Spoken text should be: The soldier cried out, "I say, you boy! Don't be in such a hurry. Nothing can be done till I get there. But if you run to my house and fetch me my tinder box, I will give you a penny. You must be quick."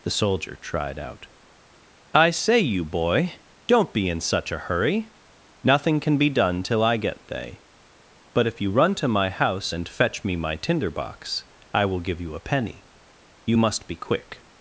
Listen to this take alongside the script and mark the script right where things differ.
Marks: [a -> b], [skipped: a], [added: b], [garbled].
The soldier [cried -> tried] out, "I say, you boy! Don't be in such a hurry. Nothing can be done till I get [there. -> they] But if you run to my house and fetch me my tinder box, I will give you a penny. You must be quick."